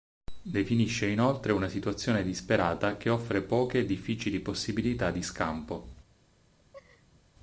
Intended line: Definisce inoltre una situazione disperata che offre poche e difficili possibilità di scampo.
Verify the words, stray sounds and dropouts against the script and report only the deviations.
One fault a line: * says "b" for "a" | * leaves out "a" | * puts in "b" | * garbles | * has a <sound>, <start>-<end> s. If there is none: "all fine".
* has a laugh, 6.6-7.2 s